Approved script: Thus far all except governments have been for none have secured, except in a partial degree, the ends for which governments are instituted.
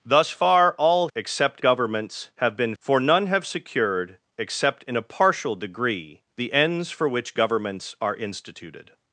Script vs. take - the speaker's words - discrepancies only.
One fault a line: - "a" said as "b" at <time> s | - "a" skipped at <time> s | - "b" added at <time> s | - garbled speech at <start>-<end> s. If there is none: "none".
none